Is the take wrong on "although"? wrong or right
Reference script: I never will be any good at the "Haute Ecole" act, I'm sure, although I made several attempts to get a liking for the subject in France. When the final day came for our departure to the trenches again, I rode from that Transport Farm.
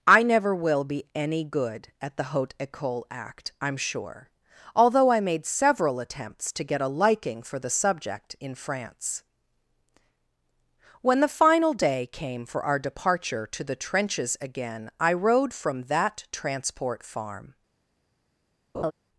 right